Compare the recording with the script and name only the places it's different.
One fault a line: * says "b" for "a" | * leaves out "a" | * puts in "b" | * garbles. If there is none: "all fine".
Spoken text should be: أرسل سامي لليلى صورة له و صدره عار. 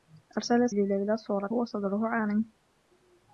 * leaves out "سامي"
* leaves out "له"